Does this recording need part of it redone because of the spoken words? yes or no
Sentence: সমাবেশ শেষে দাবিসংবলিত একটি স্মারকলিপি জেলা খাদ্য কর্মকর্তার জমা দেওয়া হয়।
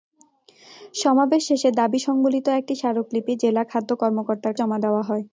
no